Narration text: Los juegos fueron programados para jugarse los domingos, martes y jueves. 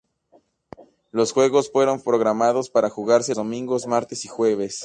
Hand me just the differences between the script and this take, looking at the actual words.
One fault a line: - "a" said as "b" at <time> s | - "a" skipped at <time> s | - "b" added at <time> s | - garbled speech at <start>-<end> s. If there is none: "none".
- "los" skipped at 3.3 s